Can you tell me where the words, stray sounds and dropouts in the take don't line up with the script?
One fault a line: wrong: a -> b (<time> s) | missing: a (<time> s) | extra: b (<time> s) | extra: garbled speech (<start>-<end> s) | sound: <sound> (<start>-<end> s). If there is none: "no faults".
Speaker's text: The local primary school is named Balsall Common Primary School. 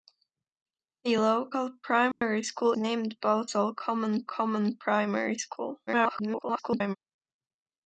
sound: dropout (2.1-2.2 s)
missing: is (2.7 s)
extra: Common (4.3 s)
extra: garbled speech (5.9-7.0 s)